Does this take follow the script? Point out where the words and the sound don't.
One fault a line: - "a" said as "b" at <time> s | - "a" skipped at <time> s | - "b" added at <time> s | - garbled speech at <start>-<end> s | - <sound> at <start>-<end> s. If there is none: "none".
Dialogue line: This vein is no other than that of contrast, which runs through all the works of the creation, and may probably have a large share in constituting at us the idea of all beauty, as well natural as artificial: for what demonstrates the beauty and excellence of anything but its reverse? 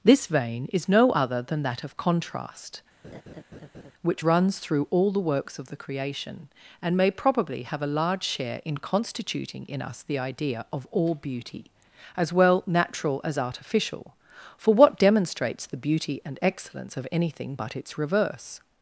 - laugh at 3.0-3.9 s
- "at" said as "in" at 9.7 s